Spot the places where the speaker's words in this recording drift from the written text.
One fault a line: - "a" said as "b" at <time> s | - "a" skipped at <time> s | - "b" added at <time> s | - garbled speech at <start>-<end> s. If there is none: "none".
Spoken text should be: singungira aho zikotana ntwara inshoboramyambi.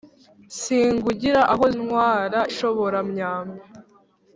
- "zikotana" skipped at 1.6 s